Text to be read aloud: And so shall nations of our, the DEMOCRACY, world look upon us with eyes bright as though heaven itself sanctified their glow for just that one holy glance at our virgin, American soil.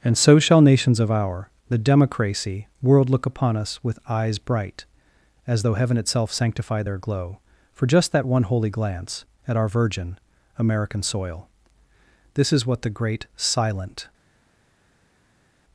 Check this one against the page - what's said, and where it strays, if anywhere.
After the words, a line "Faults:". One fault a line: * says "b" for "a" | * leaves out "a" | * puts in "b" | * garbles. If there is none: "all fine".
And so shall nations of our, the DEMOCRACY, world look upon us with eyes bright as though heaven itself sanctified their glow for just that one holy glance at our virgin, American soil. This is what the great "silent
Faults:
* puts in "This is what the great silent"